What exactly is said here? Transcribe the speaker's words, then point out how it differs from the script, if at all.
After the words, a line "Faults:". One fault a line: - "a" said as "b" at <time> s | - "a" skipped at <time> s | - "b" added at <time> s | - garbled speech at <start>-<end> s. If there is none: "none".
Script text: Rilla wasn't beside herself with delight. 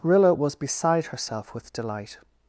Rilla was beside herself with delight.
Faults:
- "wasn't" said as "was" at 0.3 s